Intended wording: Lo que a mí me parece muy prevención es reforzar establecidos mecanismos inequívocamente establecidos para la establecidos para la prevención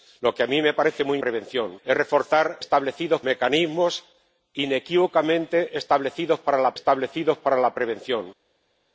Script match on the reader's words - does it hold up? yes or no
yes